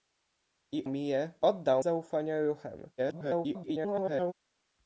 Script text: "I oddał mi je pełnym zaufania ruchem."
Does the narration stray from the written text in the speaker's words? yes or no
yes